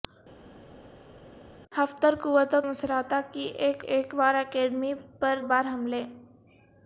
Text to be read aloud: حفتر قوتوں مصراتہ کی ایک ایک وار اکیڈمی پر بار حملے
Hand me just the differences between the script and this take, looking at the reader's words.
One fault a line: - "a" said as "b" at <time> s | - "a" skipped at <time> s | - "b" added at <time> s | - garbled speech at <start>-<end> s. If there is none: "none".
none